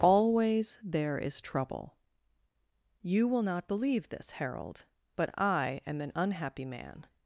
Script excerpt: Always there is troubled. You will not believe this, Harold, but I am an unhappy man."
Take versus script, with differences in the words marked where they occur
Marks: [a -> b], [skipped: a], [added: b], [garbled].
Always there is [troubled. -> trouble] You will not believe this, Harold, but I am an unhappy man."